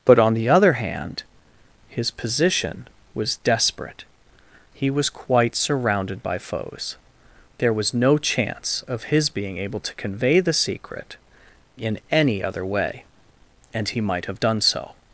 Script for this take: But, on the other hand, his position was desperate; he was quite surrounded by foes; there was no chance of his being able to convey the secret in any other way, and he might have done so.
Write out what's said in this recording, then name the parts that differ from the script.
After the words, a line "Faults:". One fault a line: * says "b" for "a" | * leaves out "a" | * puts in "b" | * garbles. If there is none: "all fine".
But, on the other hand, his position was desperate; he was quite surrounded by foes; there was no chance of his being able to convey the secret in any other way, and he might have done so.
Faults:
all fine